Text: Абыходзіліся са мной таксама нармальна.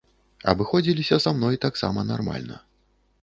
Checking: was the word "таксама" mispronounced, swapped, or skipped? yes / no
no